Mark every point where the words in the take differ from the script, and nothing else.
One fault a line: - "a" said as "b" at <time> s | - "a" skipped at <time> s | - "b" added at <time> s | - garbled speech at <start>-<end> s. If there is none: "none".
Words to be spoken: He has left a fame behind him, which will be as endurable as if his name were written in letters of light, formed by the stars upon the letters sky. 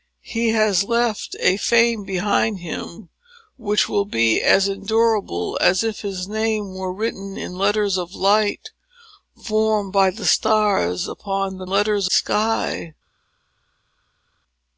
none